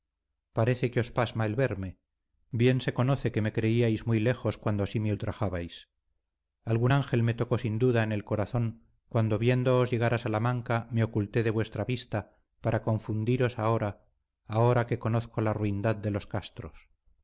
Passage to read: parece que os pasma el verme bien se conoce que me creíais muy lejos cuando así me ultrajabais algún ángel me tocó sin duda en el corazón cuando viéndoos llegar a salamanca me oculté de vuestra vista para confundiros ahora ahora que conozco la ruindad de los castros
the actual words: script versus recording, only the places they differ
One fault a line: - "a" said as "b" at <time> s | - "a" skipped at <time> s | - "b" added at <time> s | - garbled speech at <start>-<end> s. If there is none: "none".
none